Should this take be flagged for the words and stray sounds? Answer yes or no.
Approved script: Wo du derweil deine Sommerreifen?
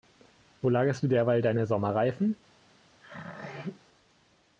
yes